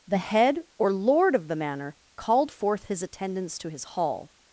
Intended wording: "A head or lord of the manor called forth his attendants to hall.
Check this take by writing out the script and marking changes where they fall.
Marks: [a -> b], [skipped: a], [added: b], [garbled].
["A -> The] head or lord of the manor called forth his attendants to [added: his] hall.